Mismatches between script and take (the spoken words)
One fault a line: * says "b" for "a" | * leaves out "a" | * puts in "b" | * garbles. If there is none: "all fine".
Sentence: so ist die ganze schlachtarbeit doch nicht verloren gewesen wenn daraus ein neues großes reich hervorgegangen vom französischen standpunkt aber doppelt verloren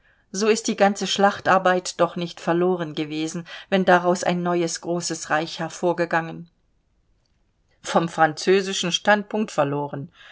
* leaves out "aber doppelt"